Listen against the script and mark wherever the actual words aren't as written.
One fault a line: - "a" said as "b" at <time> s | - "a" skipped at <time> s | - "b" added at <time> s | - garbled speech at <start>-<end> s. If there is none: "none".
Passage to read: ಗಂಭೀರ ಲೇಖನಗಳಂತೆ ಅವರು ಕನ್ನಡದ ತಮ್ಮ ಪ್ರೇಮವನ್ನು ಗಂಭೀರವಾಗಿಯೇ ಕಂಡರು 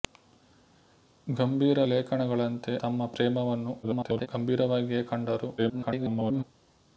- "ಅವರು ಕನ್ನಡದ" skipped at 2.7 s
- garbled speech at 3.8-4.3 s
- garbled speech at 5.6-6.4 s